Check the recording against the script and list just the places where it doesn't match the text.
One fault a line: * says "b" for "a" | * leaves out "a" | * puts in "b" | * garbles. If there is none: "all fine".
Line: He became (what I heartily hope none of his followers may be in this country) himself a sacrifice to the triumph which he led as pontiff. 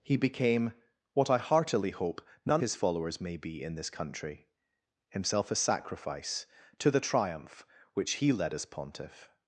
* leaves out "of"